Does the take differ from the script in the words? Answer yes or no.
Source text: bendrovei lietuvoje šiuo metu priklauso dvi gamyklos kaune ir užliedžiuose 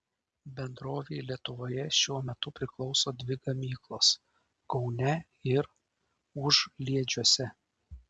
no